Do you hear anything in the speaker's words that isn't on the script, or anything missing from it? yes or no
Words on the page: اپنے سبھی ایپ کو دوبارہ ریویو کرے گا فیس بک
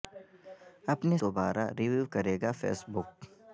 yes